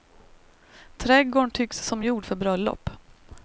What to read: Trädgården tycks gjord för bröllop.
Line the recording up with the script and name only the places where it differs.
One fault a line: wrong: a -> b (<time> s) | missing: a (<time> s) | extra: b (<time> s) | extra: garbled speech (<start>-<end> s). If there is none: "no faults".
extra: som (1.9 s)